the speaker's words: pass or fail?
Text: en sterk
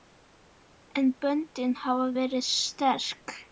fail